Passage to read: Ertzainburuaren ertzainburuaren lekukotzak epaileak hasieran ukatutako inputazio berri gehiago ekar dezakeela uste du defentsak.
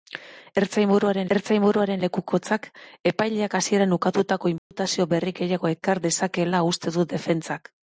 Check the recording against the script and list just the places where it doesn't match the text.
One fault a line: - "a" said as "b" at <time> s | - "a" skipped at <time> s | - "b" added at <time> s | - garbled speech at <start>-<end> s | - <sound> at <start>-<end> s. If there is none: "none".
- dropout at 4.6-4.7 s